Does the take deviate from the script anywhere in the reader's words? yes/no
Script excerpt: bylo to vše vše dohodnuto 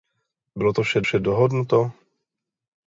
no